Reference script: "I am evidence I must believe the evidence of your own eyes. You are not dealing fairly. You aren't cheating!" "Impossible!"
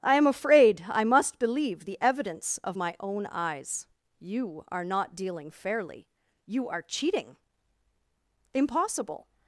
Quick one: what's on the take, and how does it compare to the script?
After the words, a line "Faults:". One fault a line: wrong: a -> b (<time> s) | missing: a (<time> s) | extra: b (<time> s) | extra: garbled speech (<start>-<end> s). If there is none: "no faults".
"I am afraid I must believe the evidence of my own eyes. You are not dealing fairly. You are cheating!" "Impossible!"
Faults:
wrong: evidence -> afraid (0.3 s)
wrong: your -> my (2.7 s)
wrong: aren't -> are (6.7 s)